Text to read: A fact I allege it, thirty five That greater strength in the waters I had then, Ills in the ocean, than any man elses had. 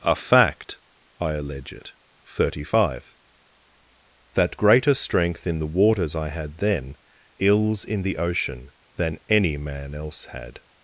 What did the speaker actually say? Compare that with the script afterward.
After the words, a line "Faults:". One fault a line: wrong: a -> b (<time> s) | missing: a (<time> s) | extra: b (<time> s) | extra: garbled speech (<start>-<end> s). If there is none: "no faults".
A fact I allege it, thirty five That greater strength in the waters I had then, Ills in the ocean, than any man else had.
Faults:
wrong: elses -> else (9.9 s)